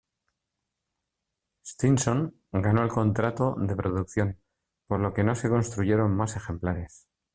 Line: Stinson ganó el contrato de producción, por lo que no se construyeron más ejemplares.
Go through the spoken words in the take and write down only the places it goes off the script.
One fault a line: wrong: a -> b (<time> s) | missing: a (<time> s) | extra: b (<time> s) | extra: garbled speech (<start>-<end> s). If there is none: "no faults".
no faults